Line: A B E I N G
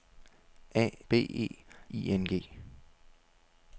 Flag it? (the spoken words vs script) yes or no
no